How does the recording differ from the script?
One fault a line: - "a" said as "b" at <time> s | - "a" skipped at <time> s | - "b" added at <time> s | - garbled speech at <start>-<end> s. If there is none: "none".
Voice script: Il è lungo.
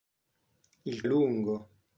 none